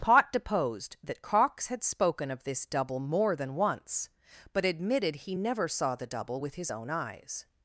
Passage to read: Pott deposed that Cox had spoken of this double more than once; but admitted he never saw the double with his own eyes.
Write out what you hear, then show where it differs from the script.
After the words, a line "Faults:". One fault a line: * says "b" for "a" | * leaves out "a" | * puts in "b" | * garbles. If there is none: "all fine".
Pott deposed that Cox had spoken of this double more than once; but admitted he never saw the double with his own eyes.
Faults:
all fine